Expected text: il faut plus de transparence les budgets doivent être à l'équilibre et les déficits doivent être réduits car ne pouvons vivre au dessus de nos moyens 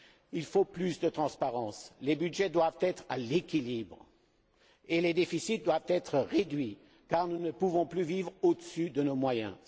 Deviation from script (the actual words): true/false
true